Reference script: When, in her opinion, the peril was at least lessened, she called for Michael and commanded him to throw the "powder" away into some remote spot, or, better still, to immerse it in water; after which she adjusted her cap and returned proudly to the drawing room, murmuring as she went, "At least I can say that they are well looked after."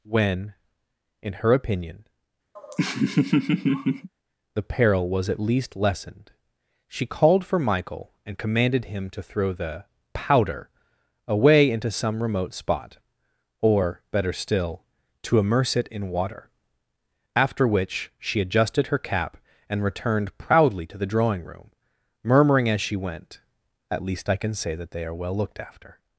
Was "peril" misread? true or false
false